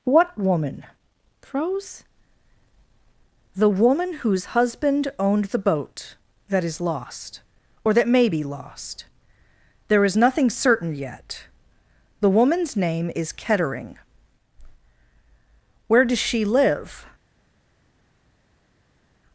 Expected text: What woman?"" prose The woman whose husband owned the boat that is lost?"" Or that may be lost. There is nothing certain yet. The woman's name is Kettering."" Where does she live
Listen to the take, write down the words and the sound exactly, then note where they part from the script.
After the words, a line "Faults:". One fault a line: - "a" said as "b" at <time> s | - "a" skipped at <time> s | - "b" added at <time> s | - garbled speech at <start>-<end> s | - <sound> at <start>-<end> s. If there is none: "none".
What woman?"" prose The woman whose husband owned the boat that is lost?"" Or that may be lost. There is nothing certain yet. The woman's name is Kettering."" Where does she live
Faults:
none